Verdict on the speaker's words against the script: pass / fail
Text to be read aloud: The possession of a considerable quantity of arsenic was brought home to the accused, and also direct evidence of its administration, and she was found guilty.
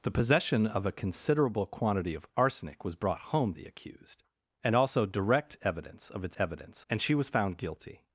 fail